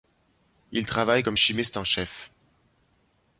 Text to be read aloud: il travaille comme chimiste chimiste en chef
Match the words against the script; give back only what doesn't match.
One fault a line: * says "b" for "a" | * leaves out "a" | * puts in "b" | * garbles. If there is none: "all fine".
* leaves out "chimiste"